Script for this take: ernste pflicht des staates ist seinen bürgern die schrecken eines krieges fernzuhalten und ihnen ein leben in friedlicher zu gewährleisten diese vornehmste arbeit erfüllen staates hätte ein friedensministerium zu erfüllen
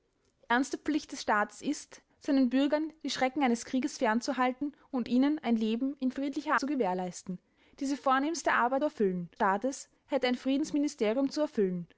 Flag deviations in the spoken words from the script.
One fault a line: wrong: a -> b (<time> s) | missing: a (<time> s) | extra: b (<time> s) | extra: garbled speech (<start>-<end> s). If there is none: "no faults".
no faults